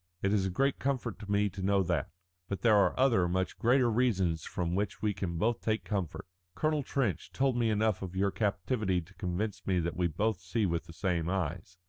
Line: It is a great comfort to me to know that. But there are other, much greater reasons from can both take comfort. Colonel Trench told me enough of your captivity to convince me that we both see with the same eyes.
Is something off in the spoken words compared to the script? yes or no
yes